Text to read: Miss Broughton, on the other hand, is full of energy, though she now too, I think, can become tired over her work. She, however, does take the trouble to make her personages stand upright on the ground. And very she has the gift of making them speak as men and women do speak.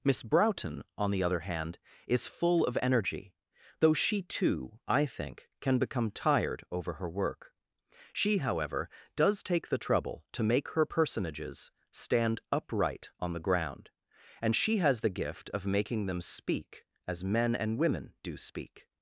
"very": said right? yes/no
no